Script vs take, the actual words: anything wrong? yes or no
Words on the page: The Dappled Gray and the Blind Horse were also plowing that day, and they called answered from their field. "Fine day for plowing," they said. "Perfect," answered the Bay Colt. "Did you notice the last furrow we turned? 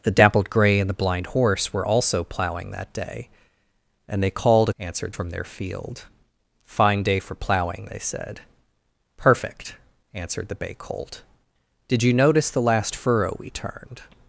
no